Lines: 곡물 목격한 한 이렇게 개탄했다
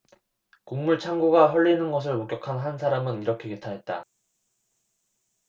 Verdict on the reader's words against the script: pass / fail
fail